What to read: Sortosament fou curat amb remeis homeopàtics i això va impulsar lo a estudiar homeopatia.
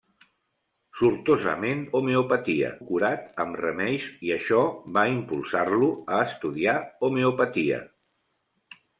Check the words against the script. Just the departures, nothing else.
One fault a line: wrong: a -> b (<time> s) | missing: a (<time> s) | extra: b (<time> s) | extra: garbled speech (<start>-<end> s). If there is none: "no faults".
wrong: fou -> homeopatia (2.0 s)
missing: homeopàtics (4.1 s)